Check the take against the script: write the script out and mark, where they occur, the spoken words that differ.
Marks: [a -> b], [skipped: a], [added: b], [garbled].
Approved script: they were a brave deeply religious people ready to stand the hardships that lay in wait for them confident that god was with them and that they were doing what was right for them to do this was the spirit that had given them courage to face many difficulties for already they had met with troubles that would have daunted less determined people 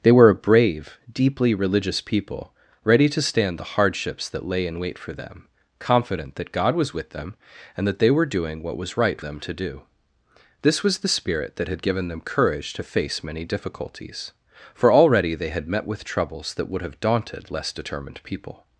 they were a brave deeply religious people ready to stand the hardships that lay in wait for them confident that god was with them and that they were doing what was right [skipped: for] them to do this was the spirit that had given them courage to face many difficulties for already they had met with troubles that would have daunted less determined people